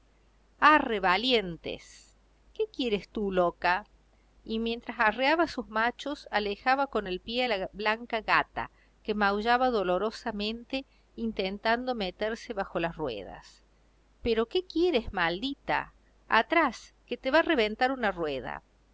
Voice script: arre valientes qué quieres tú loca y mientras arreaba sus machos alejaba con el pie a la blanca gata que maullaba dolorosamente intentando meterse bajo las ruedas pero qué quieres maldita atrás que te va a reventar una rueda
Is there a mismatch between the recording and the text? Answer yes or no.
no